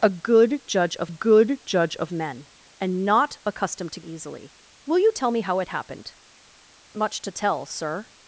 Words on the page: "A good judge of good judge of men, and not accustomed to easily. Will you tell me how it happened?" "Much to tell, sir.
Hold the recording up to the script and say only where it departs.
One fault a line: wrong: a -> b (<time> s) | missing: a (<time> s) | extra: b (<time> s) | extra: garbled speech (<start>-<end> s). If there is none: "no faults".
no faults